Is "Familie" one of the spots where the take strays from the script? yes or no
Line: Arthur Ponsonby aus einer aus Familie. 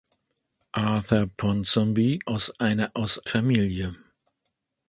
no